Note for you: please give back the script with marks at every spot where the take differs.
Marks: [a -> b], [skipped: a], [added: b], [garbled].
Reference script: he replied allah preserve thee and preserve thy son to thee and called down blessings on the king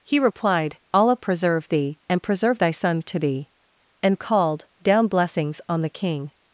he replied allah preserve thee and preserve thy son to thee and called down blessings on the king